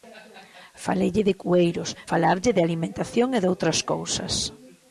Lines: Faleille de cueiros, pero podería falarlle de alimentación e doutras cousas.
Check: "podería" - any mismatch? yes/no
yes